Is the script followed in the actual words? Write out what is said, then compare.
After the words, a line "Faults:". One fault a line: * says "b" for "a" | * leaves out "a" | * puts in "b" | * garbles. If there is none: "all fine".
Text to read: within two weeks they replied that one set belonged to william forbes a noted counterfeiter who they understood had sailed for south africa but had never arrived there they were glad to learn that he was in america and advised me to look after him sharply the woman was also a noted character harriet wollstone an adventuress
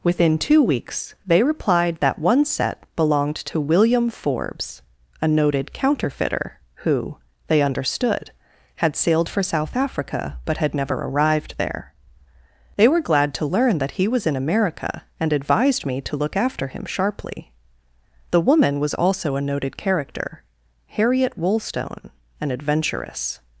within two weeks they replied that one set belonged to william forbes a noted counterfeiter who they understood had sailed for south africa but had never arrived there they were glad to learn that he was in america and advised me to look after him sharply the woman was also a noted character harriet wollstone an adventuress
Faults:
all fine